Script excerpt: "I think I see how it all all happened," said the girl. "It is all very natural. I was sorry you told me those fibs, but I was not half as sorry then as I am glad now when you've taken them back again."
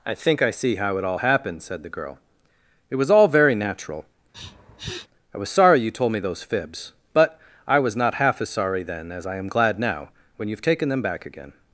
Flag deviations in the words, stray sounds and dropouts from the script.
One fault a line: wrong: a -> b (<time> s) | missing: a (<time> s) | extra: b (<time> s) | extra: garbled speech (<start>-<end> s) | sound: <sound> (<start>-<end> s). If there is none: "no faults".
missing: all (1.2 s)
wrong: is -> was (3.0 s)
sound: sniff (4.3-5.1 s)